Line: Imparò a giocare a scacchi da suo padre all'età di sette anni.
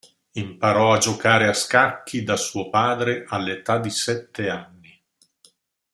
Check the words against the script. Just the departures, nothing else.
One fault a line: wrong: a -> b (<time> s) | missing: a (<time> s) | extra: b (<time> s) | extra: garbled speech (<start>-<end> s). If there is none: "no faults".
no faults